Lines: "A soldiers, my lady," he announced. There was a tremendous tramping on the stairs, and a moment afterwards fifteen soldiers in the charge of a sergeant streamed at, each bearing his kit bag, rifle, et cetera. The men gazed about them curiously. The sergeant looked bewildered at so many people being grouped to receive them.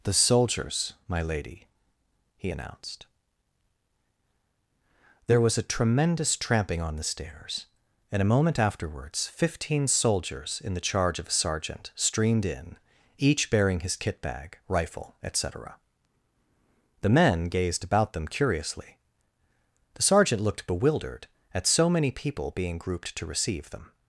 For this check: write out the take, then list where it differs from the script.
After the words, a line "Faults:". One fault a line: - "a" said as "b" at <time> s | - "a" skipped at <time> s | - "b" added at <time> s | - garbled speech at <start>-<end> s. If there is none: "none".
"The soldiers, my lady," he announced. There was a tremendous tramping on the stairs, and a moment afterwards fifteen soldiers in the charge of a sergeant streamed in, each bearing his kit bag, rifle, et cetera. The men gazed about them curiously. The sergeant looked bewildered at so many people being grouped to receive them.
Faults:
- "A" said as "The" at 0.0 s
- "at" said as "in" at 12.5 s